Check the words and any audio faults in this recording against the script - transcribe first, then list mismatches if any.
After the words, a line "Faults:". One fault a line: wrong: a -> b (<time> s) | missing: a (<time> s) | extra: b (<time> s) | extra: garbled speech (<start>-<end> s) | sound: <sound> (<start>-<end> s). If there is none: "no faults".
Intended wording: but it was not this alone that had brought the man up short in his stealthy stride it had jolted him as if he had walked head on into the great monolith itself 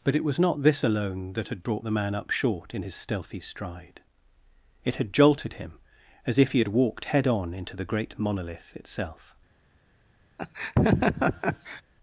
but it was not this alone that had brought the man up short in his stealthy stride it had jolted him as if he had walked head on into the great monolith itself
Faults:
sound: laugh (10.4-11.8 s)